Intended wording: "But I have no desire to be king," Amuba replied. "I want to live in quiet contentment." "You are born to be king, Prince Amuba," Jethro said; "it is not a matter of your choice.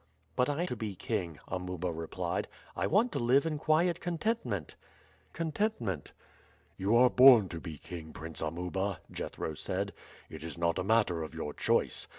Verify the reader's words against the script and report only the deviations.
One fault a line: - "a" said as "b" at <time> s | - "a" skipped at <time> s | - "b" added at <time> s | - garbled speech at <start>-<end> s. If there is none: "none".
- "have no desire" skipped at 0.6 s
- "contentment" added at 5.3 s